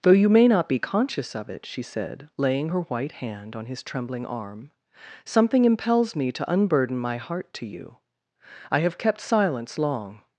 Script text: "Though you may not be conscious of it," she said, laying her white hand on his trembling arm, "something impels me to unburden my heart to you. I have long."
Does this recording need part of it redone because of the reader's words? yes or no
yes